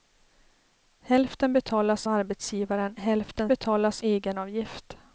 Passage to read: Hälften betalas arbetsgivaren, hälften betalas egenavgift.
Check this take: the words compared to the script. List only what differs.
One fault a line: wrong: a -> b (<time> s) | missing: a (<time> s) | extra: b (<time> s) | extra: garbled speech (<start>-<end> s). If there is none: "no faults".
no faults